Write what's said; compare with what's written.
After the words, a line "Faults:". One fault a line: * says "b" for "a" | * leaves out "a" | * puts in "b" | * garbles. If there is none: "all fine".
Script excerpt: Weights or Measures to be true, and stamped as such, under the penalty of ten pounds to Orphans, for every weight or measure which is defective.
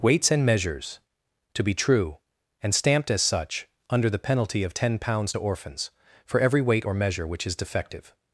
Weights and Measures to be true, and stamped as such, under the penalty of ten pounds to Orphans, for every weight or measure which is defective.
Faults:
* says "and" for "or"